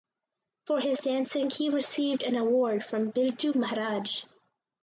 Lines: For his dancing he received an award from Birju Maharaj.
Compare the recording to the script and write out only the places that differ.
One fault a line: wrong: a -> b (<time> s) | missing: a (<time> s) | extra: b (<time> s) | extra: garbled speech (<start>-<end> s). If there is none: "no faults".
no faults